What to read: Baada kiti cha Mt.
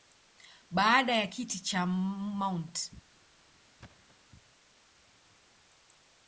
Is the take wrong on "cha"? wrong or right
right